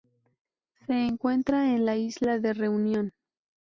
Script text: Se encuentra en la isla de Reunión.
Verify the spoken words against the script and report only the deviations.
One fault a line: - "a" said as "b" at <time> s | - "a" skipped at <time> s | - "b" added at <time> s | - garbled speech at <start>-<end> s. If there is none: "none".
none